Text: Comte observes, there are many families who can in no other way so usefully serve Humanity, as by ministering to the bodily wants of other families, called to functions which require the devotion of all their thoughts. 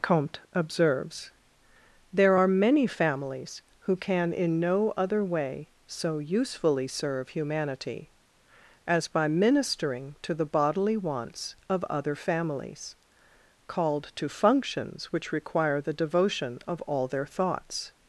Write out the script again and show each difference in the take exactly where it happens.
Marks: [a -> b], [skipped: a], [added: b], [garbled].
Comte observes, there are many families who can in no other way so usefully serve Humanity, as by ministering to the bodily wants of other families, called to functions which require the devotion of all their thoughts.